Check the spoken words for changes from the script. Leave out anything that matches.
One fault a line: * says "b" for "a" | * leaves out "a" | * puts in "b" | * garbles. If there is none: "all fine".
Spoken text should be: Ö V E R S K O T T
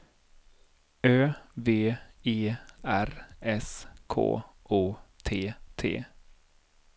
all fine